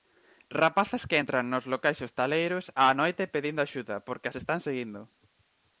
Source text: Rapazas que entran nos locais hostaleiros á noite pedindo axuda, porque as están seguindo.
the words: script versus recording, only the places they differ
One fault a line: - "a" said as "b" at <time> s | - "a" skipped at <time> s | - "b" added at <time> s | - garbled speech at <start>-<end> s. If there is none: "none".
none